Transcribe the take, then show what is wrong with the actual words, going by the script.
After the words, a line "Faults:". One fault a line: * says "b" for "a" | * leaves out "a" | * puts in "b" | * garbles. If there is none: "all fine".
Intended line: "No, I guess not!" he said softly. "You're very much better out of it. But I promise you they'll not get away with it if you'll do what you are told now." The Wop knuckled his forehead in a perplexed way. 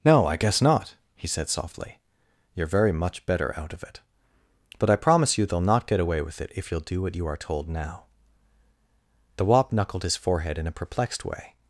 "No, I guess not!" he said softly. "You're very much better out of it. But I promise you they'll not get away with it if you'll do what you are told now." The Wop knuckled his forehead in a perplexed way.
Faults:
all fine